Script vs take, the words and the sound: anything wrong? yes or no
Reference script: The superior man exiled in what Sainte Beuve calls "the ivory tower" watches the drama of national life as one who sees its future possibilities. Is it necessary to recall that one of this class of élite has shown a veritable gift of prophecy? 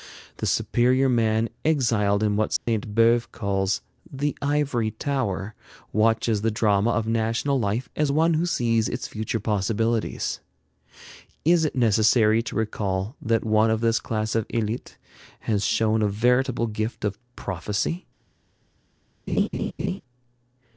yes